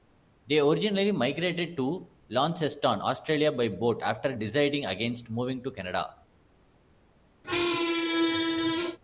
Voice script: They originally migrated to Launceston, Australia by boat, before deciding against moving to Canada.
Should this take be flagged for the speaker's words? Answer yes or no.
yes